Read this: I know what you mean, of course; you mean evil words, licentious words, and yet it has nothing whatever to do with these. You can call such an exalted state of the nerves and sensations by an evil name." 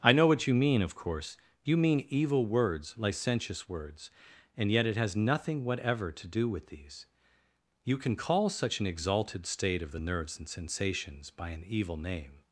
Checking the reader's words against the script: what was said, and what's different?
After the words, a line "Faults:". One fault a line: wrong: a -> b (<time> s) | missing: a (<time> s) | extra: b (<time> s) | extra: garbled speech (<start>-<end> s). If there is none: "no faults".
I know what you mean, of course; you mean evil words, licentious words, and yet it has nothing whatever to do with these. You can call such an exalted state of the nerves and sensations by an evil name."
Faults:
no faults